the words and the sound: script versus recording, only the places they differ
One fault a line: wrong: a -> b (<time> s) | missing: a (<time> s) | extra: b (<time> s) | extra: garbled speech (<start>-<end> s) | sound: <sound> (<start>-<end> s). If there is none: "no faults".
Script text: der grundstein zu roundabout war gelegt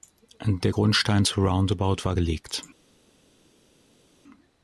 no faults